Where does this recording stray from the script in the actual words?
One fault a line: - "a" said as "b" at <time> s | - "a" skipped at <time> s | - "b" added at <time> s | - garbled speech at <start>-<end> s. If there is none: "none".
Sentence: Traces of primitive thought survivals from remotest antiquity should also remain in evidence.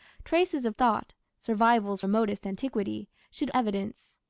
- "primitive" skipped at 0.7 s
- "from" skipped at 2.0 s
- "also remain in" skipped at 3.5 s